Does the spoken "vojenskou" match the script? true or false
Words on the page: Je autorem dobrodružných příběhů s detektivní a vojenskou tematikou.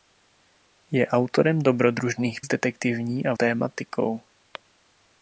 false